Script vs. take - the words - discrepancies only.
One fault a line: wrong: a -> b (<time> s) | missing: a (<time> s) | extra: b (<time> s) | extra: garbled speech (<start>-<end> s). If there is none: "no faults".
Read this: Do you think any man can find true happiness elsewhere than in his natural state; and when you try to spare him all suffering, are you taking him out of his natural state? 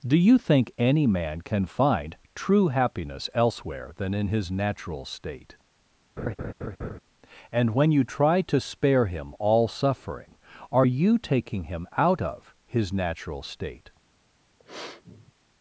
no faults